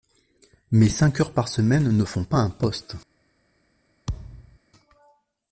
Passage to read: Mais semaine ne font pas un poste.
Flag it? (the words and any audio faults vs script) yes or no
yes